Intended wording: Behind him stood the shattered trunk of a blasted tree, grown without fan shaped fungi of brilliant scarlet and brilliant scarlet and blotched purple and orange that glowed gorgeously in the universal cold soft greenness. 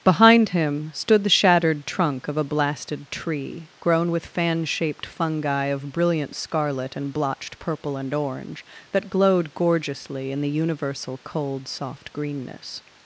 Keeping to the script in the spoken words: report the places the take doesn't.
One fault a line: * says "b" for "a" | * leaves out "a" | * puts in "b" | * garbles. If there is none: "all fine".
* says "with" for "without"
* leaves out "brilliant scarlet and"